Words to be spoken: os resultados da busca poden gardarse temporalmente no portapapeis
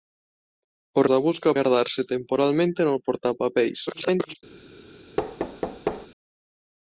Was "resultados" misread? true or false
true